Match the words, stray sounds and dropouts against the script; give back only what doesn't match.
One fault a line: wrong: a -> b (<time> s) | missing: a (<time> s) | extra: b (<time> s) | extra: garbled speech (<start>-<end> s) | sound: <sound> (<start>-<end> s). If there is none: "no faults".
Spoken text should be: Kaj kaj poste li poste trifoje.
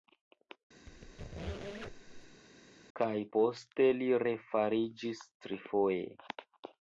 sound: squeak (0.9-2.4 s)
missing: kaj (3.1 s)
wrong: poste -> refariĝis (4.2 s)